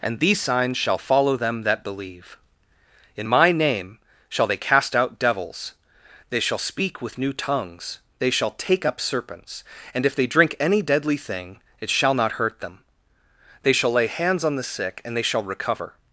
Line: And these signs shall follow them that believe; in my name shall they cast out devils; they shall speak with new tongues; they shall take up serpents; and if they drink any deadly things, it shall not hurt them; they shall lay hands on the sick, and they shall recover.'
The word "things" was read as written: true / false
false